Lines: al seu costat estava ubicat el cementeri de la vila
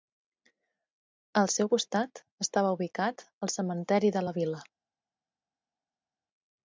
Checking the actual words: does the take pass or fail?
pass